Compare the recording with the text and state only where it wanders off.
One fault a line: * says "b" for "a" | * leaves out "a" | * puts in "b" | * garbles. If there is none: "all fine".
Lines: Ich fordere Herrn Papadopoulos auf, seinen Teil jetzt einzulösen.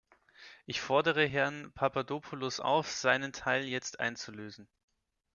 all fine